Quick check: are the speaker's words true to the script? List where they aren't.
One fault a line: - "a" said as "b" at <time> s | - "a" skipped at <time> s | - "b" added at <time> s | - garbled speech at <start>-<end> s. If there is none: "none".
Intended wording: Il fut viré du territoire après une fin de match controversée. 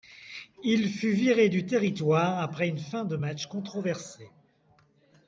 none